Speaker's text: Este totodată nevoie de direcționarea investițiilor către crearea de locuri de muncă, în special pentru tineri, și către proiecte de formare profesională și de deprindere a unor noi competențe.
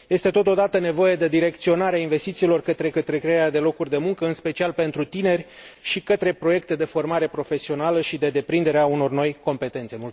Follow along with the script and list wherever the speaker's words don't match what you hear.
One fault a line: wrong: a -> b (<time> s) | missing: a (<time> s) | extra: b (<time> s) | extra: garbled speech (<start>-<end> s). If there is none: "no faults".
extra: către (2.9 s)